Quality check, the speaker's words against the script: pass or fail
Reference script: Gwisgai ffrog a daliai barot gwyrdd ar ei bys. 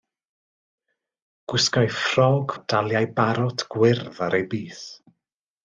pass